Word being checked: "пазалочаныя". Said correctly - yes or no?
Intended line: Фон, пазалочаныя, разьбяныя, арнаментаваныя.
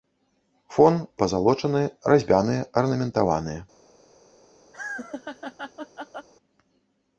yes